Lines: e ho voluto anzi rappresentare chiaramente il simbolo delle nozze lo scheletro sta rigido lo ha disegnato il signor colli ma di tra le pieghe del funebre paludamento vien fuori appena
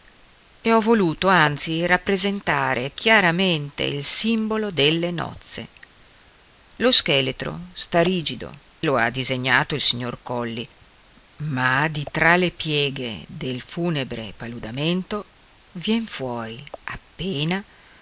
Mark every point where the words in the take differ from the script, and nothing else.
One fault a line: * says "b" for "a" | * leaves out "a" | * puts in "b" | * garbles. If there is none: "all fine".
all fine